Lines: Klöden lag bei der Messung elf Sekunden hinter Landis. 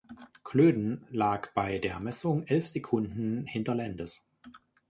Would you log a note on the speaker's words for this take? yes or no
no